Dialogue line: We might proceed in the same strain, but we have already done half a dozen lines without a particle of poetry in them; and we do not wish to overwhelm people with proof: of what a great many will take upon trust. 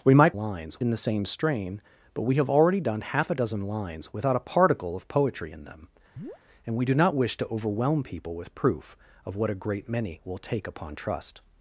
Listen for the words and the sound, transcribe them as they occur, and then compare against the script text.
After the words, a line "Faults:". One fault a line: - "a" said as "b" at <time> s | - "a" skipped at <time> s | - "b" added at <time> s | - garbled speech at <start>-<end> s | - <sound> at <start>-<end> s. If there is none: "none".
We might lines in the same strain, but we have already done half a dozen lines without a particle of poetry in them; and we do not wish to overwhelm people with proof: of what a great many will take upon trust.
Faults:
- "proceed" said as "lines" at 0.3 s
- chirp at 6.2-6.4 s